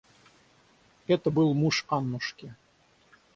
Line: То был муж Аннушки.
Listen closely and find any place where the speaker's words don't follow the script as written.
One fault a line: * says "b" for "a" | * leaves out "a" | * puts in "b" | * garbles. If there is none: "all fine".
* says "Это" for "То"